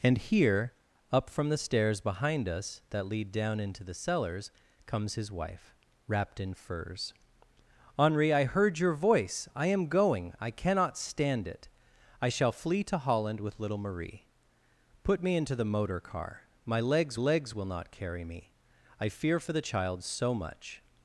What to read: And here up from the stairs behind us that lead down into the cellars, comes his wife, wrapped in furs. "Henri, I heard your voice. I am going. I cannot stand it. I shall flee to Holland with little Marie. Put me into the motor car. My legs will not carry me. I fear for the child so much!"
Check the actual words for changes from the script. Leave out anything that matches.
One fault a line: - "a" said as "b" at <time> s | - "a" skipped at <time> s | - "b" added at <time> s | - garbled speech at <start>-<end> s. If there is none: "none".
- "legs" added at 17.1 s